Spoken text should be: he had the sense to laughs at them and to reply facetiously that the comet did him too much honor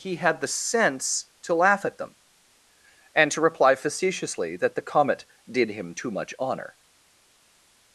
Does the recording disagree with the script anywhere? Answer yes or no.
yes